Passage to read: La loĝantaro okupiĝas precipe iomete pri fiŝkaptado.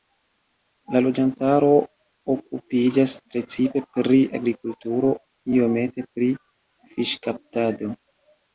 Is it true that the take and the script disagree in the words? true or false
true